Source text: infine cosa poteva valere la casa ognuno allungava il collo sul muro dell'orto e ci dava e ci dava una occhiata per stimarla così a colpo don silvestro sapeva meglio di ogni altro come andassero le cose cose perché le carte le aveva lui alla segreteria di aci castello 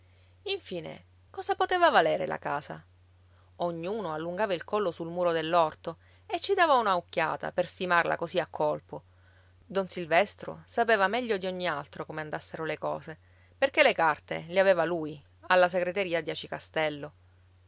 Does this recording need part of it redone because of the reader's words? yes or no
yes